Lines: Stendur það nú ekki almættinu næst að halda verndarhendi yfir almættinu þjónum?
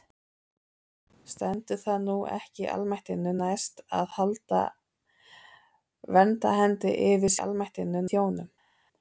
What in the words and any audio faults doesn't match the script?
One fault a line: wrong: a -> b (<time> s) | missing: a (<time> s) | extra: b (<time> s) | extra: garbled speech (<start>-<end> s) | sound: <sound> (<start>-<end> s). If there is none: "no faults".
no faults